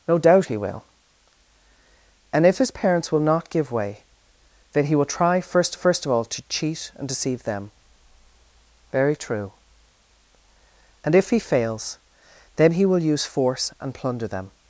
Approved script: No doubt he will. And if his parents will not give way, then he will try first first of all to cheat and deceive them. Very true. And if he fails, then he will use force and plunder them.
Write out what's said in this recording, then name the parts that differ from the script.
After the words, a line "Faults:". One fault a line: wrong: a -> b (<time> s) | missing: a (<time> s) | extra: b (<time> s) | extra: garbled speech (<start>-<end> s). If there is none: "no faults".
No doubt he will. And if his parents will not give way, then he will try first first of all to cheat and deceive them. Very true. And if he fails, then he will use force and plunder them.
Faults:
no faults